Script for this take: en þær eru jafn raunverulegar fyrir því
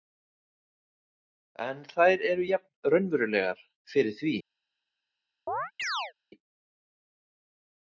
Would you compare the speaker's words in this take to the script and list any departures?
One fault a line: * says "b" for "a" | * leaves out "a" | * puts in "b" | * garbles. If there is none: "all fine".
all fine